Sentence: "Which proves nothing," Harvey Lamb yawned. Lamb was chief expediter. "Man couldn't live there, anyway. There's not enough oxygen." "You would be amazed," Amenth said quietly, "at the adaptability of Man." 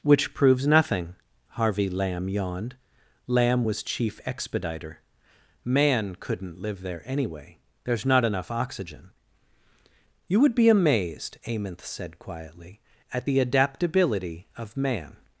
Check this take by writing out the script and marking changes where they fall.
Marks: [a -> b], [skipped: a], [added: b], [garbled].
"Which proves nothing," Harvey Lamb yawned. Lamb was chief expediter. "Man couldn't live there, anyway. There's not enough oxygen." "You would be amazed," Amenth said quietly, "at the adaptability of Man."